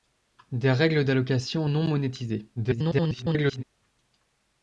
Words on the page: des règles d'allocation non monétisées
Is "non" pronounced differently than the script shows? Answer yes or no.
no